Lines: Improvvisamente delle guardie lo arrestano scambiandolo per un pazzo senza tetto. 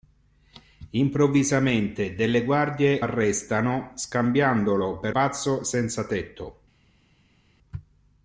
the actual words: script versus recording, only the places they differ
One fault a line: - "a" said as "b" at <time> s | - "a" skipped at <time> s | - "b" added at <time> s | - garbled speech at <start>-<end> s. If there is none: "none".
- "lo" skipped at 3.0 s
- "un" skipped at 5.2 s